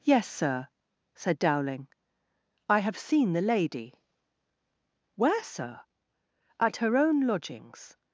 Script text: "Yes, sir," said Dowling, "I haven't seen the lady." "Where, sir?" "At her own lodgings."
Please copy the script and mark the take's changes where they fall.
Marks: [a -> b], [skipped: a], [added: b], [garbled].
"Yes, sir," said Dowling, "I [haven't -> have] seen the lady." "Where, sir?" "At her own lodgings."